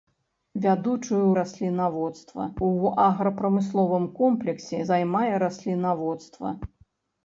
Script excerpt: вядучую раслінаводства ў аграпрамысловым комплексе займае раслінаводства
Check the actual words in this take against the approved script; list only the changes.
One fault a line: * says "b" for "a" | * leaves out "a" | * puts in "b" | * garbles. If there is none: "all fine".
all fine